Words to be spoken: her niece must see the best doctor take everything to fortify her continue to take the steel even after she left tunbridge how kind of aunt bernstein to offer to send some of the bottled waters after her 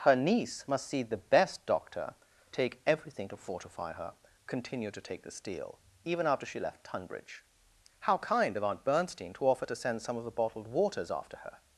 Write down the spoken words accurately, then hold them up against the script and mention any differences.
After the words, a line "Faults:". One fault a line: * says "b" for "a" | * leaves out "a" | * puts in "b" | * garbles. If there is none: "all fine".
her niece must see the best doctor take everything to fortify her continue to take the steel even after she left tunbridge how kind of aunt bernstein to offer to send some of the bottled waters after her
Faults:
all fine